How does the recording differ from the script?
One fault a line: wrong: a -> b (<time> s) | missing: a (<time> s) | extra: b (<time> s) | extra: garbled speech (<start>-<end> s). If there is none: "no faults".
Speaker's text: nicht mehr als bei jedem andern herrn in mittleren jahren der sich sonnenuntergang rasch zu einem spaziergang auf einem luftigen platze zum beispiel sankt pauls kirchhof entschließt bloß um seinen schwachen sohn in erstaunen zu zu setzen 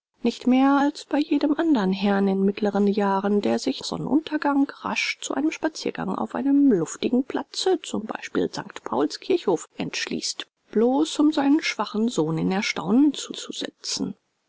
no faults